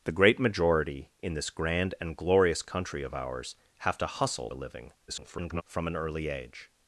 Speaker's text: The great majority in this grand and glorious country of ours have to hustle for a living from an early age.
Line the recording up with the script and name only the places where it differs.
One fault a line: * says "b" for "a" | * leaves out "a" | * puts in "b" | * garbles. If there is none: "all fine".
* leaves out "for"
* garbles